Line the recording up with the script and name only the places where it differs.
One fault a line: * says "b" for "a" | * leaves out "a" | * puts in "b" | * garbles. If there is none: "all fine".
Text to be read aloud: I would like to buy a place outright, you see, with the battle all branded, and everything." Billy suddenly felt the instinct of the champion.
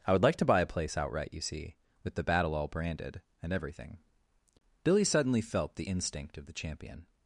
all fine